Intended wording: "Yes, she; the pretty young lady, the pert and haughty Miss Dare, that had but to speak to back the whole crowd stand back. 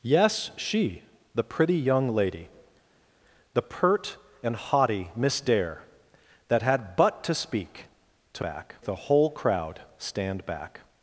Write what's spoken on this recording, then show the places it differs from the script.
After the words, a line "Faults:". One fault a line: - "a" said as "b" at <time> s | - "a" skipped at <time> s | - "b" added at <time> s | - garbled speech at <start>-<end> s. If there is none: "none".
"Yes, she; the pretty young lady, the pert and haughty Miss Dare, that had but to speak to back the whole crowd stand back.
Faults:
none